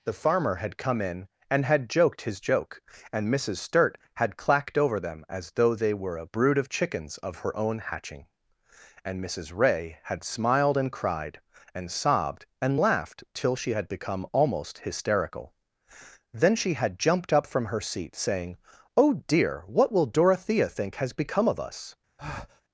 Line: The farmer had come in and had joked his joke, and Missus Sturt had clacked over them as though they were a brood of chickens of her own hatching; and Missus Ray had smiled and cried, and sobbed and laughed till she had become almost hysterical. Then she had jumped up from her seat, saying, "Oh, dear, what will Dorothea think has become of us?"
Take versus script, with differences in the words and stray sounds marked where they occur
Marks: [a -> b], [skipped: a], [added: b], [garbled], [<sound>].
The farmer had come in and had joked his joke, and Missus Sturt had clacked over them as though they were a brood of chickens of her own hatching; and Missus Ray had smiled and cried, and sobbed and laughed till she had become almost hysterical. Then she had jumped up from her seat, saying, "Oh, dear, what will Dorothea think has become of us?" [breath]